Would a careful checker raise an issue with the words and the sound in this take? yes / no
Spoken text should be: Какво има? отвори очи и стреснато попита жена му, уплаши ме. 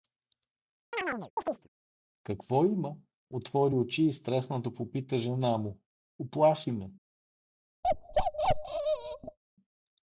yes